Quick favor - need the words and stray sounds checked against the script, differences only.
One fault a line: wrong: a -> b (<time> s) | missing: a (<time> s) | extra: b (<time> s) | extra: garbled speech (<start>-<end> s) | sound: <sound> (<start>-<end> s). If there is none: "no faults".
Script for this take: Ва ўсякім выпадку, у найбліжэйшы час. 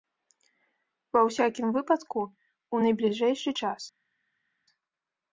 no faults